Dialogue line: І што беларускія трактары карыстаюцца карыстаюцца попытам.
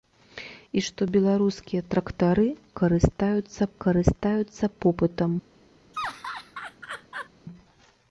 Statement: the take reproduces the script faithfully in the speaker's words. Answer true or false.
true